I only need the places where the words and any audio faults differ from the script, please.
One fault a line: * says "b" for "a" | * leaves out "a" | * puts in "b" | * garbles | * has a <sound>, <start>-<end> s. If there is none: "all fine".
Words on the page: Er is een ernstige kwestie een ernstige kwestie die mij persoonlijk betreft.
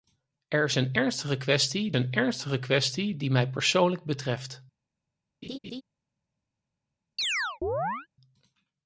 * has a laugh, 5.4-5.8 s
* has a chirp, 7.2-8.1 s